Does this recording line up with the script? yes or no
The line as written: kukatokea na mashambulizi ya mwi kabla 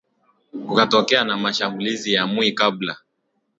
yes